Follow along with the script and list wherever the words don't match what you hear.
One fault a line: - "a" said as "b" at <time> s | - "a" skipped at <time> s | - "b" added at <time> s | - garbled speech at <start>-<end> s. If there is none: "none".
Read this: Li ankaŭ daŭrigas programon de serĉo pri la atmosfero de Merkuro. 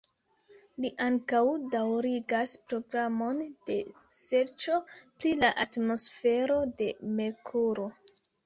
none